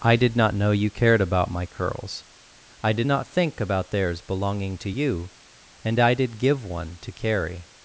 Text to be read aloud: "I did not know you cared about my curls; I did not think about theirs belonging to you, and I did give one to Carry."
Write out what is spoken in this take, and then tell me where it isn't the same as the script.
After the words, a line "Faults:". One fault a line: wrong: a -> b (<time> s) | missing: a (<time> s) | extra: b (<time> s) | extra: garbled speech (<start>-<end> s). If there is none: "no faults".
"I did not know you cared about my curls; I did not think about theirs belonging to you, and I did give one to Carry."
Faults:
no faults